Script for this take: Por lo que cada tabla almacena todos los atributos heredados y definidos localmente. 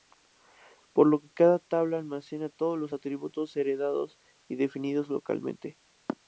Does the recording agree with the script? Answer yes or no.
yes